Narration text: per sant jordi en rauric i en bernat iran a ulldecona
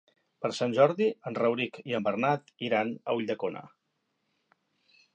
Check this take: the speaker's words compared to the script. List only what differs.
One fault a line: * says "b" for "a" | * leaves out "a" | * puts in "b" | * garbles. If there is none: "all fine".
all fine